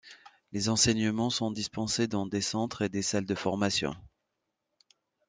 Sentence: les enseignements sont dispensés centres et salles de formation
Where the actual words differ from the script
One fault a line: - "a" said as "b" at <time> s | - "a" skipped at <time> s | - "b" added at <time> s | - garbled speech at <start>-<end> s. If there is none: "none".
- "dans des" added at 2.1 s
- "des" added at 2.9 s